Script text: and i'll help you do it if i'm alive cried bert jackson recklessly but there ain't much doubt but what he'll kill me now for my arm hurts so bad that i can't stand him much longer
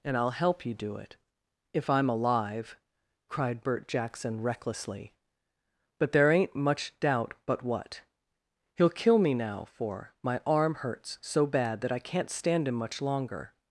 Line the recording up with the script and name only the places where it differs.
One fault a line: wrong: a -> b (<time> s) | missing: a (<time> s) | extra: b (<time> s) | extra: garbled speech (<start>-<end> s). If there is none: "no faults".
no faults